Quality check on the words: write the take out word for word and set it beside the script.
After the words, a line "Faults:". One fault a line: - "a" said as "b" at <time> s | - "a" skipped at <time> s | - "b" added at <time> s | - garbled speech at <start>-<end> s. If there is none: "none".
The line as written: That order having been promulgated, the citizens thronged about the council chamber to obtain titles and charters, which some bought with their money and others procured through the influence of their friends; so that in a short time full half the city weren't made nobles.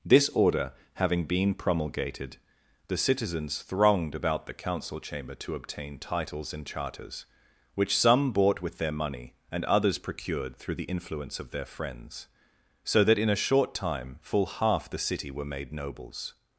This order having been promulgated, the citizens thronged about the council chamber to obtain titles and charters, which some bought with their money and others procured through the influence of their friends; so that in a short time full half the city were made nobles.
Faults:
- "That" said as "This" at 0.0 s
- "weren't" said as "were" at 15.3 s